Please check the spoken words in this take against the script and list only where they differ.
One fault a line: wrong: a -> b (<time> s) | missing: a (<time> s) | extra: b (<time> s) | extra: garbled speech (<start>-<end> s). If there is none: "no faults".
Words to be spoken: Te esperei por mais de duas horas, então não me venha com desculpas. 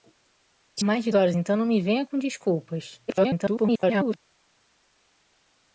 missing: esperei por (0.8 s)
missing: duas (1.1 s)
extra: garbled speech (3.1-4.2 s)